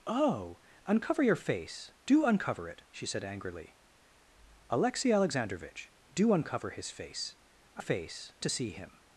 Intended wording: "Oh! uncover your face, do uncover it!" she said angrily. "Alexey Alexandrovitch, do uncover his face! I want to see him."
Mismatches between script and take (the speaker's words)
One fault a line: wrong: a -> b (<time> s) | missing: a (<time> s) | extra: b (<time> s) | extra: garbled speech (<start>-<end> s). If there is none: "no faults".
wrong: want -> face (7.8 s)